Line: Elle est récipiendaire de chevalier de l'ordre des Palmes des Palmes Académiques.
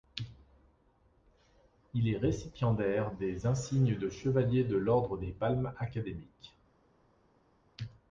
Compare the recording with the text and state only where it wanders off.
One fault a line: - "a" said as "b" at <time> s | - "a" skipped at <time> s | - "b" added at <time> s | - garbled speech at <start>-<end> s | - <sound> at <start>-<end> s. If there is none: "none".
- "Elle" said as "Il" at 1.9 s
- "des insignes" added at 3.1 s
- "des Palmes" skipped at 5.8 s